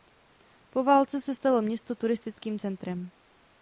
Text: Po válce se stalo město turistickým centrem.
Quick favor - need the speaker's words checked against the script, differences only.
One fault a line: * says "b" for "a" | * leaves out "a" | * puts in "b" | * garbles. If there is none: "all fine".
all fine